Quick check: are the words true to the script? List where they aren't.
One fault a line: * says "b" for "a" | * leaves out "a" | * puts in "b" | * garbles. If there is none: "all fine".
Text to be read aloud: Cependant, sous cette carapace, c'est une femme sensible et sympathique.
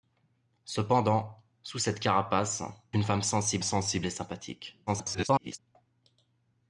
* leaves out "c'est"
* puts in "sensible"
* garbles